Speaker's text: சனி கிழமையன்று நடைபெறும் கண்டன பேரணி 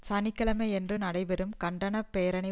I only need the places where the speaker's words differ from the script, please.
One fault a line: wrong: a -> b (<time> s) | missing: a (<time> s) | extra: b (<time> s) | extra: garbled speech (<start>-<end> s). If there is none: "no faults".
no faults